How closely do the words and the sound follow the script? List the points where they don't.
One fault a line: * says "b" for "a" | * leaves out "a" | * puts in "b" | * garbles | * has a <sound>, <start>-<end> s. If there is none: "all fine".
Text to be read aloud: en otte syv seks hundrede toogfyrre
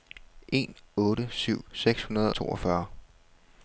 all fine